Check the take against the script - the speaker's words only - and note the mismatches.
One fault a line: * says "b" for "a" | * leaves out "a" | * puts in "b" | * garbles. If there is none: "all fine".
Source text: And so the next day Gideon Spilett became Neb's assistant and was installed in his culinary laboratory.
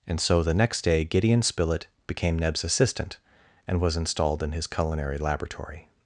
all fine